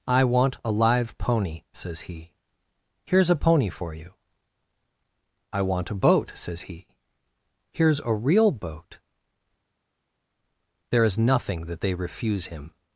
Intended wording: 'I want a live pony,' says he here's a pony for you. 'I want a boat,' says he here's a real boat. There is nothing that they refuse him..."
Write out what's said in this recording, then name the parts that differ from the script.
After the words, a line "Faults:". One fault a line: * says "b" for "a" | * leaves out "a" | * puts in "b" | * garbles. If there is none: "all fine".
'I want a live pony,' says he here's a pony for you. 'I want a boat,' says he here's a real boat. There is nothing that they refuse him..."
Faults:
all fine